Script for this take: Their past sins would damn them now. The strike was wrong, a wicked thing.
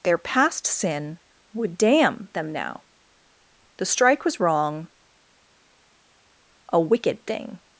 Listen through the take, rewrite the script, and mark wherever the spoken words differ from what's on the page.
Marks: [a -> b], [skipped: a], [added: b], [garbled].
Their past [sins -> sin] would damn them now. The strike was wrong, a wicked thing.